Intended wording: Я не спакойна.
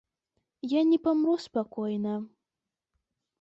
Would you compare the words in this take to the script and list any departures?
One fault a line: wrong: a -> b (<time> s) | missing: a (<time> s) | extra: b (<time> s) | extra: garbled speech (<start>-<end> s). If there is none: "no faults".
extra: памру (1.1 s)